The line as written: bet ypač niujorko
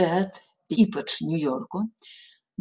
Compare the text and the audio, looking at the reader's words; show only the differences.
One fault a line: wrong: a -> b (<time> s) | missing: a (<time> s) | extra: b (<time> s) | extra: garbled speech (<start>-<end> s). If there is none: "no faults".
no faults